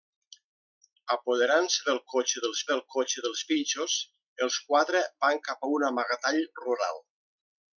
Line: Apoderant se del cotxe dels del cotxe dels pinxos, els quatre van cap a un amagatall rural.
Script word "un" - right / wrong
right